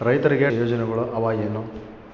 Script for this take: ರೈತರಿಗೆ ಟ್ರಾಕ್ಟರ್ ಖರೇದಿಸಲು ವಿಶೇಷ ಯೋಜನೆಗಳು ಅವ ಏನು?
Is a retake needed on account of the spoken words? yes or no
yes